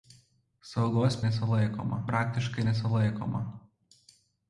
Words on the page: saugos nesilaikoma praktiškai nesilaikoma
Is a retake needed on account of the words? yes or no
no